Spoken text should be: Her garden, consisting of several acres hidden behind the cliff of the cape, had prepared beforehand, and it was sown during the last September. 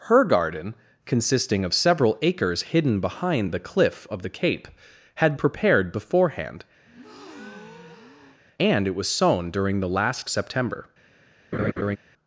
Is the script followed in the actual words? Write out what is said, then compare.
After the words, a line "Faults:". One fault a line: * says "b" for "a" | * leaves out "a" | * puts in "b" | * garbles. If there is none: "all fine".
Her garden, consisting of several acres hidden behind the cliff of the cape, had prepared beforehand, and it was sown during the last September.
Faults:
all fine